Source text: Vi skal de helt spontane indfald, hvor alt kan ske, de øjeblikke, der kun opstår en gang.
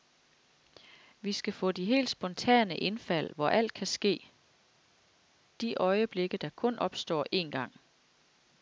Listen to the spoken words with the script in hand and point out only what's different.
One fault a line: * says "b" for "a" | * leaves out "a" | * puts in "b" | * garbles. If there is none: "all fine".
* puts in "få"